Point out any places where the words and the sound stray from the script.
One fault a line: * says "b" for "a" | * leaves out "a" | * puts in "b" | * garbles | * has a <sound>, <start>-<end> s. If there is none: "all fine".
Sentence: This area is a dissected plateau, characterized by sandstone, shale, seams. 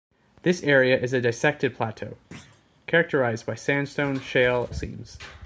* has a thud, 2.3-2.6 s